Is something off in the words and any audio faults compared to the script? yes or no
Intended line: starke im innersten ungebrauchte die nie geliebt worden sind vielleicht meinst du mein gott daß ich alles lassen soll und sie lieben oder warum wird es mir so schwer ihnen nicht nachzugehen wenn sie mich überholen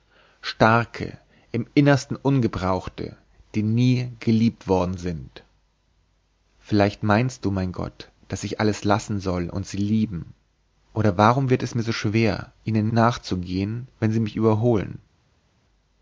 yes